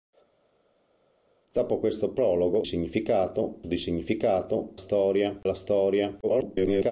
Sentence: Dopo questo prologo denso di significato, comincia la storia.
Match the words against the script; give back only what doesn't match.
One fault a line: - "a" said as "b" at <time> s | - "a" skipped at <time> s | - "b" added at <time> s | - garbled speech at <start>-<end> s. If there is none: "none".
- "denso" said as "significato" at 2.6 s
- "comincia" said as "storia" at 4.7 s
- garbled speech at 6.2-6.9 s